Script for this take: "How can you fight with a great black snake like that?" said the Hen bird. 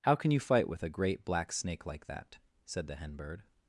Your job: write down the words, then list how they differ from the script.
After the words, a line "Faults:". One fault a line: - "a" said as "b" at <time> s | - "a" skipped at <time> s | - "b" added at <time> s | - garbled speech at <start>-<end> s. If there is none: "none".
"How can you fight with a great black snake like that?" said the Hen bird.
Faults:
none